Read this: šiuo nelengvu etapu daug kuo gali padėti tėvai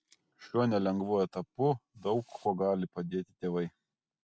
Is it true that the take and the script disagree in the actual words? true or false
false